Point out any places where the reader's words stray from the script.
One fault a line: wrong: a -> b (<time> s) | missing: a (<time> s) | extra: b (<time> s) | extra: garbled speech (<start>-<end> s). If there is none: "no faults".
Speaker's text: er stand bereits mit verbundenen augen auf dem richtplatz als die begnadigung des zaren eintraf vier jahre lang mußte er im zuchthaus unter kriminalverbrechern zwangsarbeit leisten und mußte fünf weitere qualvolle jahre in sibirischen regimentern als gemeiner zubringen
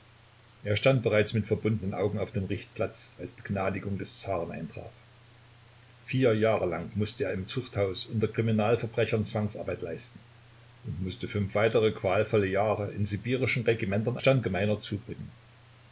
missing: die (3.4 s)
wrong: als -> stand (14.2 s)